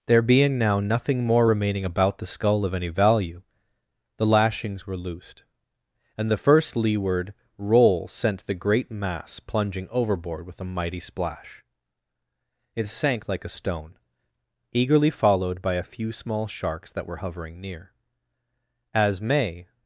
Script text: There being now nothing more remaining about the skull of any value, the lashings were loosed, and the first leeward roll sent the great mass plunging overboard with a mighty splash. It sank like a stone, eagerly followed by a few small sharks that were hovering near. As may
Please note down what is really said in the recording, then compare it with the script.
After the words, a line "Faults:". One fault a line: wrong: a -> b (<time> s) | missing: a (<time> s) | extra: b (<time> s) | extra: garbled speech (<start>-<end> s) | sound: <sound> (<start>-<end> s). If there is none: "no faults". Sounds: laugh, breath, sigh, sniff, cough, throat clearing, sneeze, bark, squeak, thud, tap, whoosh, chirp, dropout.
There being now nothing more remaining about the skull of any value, the lashings were loosed, and the first leeward roll sent the great mass plunging overboard with a mighty splash. It sank like a stone, eagerly followed by a few small sharks that were hovering near. As may
Faults:
no faults